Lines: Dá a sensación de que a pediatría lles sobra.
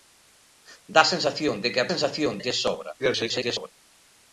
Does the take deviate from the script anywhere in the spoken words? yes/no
yes